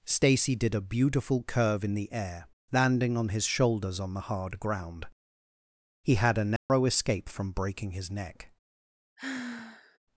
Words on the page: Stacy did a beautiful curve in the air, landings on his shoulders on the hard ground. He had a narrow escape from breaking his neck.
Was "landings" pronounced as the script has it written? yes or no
no